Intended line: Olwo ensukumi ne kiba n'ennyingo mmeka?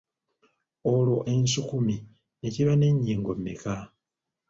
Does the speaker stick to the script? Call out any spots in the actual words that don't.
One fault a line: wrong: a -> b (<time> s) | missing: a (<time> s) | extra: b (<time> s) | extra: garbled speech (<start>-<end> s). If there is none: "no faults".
no faults